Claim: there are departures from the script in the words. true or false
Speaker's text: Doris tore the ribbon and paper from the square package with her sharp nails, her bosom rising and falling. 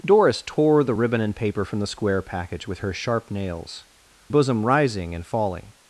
true